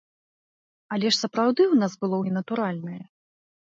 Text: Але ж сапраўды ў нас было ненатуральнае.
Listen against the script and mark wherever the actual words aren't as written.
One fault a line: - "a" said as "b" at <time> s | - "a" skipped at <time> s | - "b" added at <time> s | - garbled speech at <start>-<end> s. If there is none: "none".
none